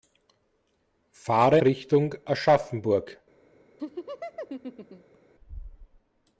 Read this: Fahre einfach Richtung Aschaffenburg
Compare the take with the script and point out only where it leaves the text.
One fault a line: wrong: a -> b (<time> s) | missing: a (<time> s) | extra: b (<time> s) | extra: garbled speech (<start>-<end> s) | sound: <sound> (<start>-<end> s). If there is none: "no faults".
missing: einfach (1.6 s)
sound: laugh (3.8-5.2 s)